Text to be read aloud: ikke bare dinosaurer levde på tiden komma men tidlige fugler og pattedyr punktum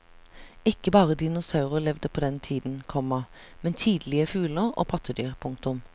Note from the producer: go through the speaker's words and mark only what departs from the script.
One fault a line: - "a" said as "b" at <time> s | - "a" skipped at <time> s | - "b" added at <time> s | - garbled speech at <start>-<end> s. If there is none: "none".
- "den" added at 2.2 s